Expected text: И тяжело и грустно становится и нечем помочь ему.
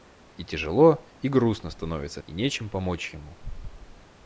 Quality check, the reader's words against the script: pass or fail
pass